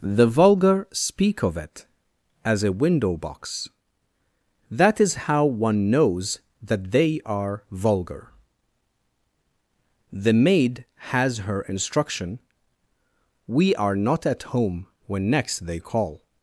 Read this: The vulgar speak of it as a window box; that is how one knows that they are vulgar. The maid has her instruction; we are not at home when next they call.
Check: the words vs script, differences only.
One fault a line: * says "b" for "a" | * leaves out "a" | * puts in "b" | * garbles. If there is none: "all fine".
all fine